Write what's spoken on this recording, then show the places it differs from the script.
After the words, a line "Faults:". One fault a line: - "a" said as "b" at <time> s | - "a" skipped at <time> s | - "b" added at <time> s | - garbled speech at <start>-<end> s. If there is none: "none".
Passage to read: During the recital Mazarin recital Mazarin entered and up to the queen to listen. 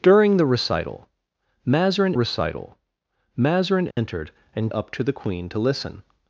During the recital Mazarin recital Mazarin entered and up to the queen to listen.
Faults:
none